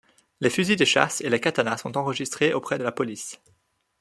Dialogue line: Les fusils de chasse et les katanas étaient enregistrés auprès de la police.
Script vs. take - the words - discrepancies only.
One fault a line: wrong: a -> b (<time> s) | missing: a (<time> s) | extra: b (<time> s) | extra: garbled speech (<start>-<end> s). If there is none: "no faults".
wrong: étaient -> sont (1.8 s)